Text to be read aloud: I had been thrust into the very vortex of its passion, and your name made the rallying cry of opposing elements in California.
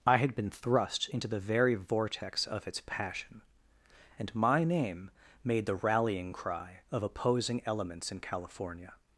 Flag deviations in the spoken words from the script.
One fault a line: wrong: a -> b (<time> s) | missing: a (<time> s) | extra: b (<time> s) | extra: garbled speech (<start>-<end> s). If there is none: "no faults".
wrong: your -> my (4.3 s)